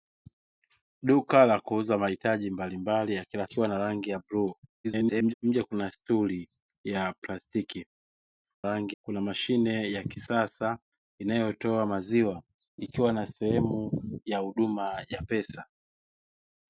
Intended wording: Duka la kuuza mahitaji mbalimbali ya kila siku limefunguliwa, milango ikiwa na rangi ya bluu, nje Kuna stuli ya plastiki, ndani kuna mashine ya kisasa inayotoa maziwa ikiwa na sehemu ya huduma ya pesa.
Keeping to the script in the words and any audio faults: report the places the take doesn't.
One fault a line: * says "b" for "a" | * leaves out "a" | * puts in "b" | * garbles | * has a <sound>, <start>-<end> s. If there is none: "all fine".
* leaves out "siku limefunguliwa milango"
* garbles
* says "rangi" for "ndani"